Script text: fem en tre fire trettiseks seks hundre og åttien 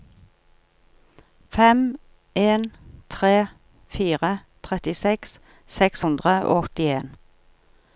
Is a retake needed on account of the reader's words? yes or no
no